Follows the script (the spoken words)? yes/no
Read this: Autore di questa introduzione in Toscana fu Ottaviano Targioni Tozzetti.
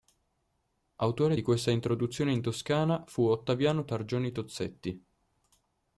yes